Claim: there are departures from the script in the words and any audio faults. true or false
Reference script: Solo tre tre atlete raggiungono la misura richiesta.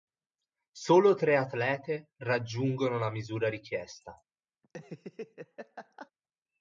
true